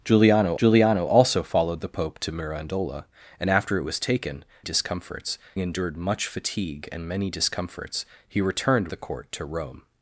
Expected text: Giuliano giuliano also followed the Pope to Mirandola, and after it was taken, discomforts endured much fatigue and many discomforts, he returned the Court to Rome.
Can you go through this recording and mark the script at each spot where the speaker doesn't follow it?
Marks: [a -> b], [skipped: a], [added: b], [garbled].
Giuliano giuliano also followed the Pope to Mirandola, and after it was taken, discomforts endured much fatigue and many discomforts, he returned the Court to Rome.